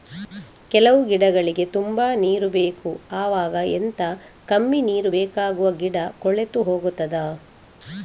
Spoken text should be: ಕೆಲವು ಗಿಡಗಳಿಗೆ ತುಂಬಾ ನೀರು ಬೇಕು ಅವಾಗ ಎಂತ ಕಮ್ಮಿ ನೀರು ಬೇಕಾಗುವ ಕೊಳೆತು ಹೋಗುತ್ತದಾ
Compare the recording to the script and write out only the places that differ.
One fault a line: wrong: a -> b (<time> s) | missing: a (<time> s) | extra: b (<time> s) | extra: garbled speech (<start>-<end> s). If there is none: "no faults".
extra: ಗಿಡ (5.7 s)